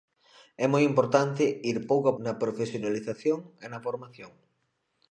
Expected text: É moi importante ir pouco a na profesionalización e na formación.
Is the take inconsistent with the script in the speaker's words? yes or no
no